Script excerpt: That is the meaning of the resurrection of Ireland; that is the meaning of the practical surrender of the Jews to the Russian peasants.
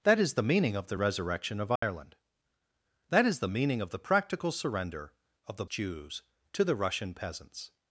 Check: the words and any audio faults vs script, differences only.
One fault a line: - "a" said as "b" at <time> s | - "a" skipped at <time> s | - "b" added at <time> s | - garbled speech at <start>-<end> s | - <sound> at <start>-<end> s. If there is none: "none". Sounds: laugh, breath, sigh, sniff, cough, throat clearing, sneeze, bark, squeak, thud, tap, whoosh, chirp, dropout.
- dropout at 1.8-1.8 s